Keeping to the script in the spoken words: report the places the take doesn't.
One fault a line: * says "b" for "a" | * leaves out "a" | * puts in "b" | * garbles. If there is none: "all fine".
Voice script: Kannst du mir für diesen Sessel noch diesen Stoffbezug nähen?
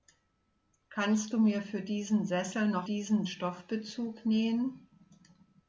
all fine